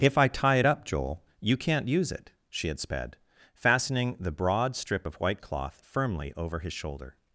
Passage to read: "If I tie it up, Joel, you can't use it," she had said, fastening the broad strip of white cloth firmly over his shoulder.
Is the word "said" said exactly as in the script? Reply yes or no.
no